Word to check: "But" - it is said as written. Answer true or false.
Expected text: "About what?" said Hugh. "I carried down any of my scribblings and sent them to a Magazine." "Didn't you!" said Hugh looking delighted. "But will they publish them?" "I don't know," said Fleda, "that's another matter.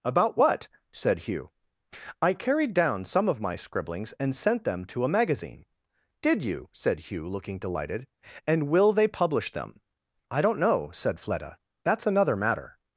false